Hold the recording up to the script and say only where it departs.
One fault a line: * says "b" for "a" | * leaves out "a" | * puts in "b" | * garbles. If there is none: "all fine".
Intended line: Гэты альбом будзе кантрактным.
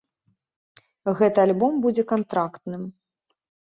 all fine